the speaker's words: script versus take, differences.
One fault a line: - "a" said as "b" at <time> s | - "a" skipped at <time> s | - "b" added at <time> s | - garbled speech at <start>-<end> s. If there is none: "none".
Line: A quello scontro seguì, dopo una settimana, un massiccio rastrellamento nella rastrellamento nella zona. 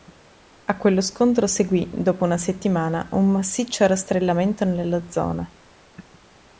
- "rastrellamento nella" skipped at 5.1 s